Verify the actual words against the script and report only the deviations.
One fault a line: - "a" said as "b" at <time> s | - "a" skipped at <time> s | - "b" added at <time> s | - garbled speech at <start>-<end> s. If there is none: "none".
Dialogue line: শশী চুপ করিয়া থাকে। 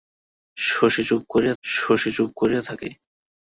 - "শশী চুপ করিয়া" added at 1.6 s